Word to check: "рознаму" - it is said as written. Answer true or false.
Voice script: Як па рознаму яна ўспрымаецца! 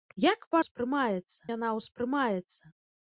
false